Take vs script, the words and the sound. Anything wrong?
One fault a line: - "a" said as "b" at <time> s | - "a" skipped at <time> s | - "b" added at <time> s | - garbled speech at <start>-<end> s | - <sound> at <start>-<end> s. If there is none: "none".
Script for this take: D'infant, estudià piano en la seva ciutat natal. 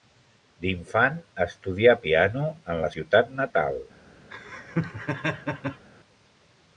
- "seva" skipped at 2.9 s
- laugh at 4.3-5.9 s